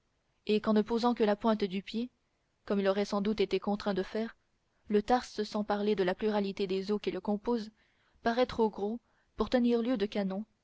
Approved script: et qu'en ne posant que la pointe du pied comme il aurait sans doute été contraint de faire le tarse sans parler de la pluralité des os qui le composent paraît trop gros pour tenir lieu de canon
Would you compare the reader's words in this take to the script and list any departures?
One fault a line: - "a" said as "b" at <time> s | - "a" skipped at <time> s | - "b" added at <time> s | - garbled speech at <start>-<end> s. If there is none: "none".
none